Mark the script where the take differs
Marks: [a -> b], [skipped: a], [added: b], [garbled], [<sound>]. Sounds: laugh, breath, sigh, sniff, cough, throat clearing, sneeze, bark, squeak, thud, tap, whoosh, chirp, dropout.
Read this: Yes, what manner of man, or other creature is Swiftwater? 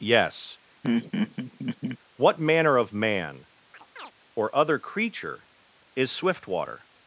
Yes, [laugh] what manner of man, [chirp] or other creature is Swiftwater?